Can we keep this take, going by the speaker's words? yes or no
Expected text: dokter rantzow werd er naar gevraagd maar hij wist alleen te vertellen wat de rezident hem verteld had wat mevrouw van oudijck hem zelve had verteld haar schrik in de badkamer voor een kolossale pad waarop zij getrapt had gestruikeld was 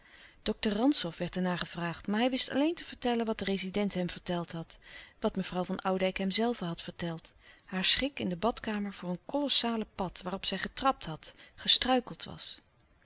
yes